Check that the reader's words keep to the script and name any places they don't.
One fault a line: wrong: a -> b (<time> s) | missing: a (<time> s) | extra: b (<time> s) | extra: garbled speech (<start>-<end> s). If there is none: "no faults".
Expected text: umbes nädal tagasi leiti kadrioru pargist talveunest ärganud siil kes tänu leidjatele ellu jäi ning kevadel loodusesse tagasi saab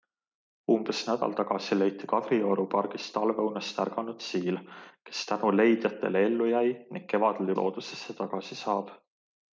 no faults